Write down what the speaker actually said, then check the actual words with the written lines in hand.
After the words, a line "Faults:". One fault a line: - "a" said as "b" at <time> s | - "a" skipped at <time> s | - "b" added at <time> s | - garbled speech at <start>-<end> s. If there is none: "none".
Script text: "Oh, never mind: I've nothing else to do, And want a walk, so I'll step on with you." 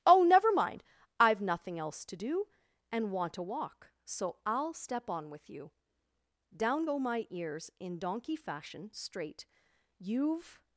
"Oh, never mind: I've nothing else to do, And want a walk, so I'll step on with you." Down go my ears, in donkey fashion, straight; You've
Faults:
- "Down go my ears in donkey fashion straight You've" added at 6.5 s